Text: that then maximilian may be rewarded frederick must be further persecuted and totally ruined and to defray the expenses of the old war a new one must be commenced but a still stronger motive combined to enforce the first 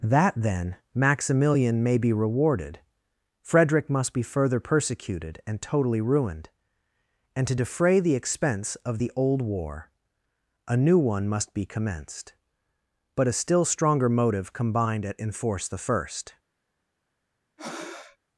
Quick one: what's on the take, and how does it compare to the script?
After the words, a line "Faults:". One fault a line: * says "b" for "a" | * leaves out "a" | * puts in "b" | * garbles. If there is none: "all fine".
that then maximilian may be rewarded frederick must be further persecuted and totally ruined and to defray the expense of the old war a new one must be commenced but a still stronger motive combined at enforce the first
Faults:
* says "expense" for "expenses"
* says "at" for "to"